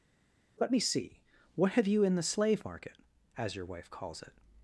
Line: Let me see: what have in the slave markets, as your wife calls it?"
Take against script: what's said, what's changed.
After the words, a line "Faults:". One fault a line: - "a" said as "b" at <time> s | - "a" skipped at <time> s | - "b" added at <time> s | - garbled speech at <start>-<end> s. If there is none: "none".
Let me see: what have you in the slave market, as your wife calls it?"
Faults:
- "you" added at 1.9 s
- "markets" said as "market" at 2.6 s